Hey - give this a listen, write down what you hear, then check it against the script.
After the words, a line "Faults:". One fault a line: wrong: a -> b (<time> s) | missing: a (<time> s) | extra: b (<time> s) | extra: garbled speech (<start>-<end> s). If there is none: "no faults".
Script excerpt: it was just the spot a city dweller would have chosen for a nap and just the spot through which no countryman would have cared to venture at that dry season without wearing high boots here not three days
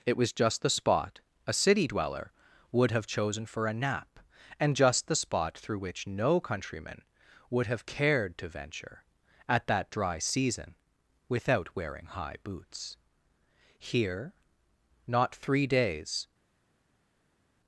it was just the spot a city dweller would have chosen for a nap and just the spot through which no countryman would have cared to venture at that dry season without wearing high boots here not three days
Faults:
no faults